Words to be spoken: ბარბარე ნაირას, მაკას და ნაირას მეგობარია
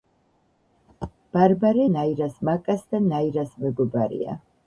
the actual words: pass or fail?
pass